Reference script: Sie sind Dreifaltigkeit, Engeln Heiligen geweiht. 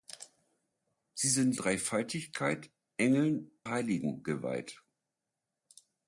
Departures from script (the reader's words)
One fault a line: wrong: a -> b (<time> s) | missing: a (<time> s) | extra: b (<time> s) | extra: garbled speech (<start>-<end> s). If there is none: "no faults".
no faults